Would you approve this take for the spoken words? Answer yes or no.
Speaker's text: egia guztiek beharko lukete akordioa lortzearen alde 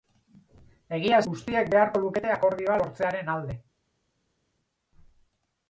yes